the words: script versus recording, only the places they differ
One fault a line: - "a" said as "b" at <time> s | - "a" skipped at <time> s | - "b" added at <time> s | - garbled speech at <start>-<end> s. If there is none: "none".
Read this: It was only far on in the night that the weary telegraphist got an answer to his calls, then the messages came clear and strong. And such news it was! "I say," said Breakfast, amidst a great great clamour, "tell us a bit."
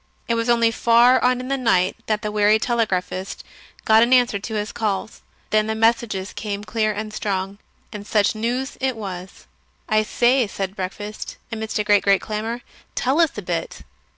none